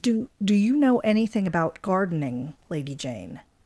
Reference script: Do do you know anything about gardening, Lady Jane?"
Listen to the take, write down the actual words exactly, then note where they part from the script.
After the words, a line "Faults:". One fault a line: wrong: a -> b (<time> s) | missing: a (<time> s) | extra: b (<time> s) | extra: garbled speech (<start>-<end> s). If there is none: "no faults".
Do do you know anything about gardening, Lady Jane?"
Faults:
no faults